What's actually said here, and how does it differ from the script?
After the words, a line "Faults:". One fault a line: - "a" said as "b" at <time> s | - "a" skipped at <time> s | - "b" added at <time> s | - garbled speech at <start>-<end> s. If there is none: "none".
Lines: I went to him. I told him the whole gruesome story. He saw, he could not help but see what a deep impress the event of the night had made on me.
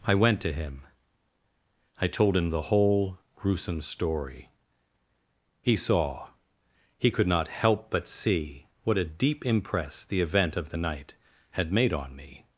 I went to him. I told him the whole gruesome story. He saw, he could not help but see what a deep impress the event of the night had made on me.
Faults:
none